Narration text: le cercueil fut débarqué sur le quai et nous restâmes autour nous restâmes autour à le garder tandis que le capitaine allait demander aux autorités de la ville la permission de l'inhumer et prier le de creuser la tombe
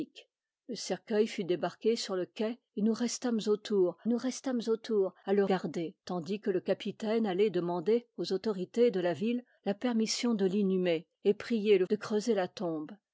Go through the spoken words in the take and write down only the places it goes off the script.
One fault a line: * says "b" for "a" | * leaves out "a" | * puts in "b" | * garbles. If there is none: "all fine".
all fine